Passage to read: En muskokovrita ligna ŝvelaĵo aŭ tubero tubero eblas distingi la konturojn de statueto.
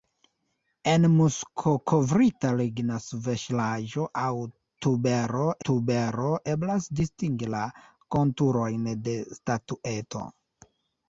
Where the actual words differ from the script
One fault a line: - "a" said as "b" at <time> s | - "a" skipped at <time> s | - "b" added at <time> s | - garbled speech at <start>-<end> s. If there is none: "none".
none